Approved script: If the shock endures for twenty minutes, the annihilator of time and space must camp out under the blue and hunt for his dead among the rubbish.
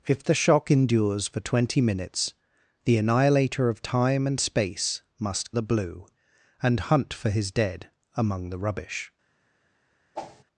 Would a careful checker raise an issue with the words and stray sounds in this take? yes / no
yes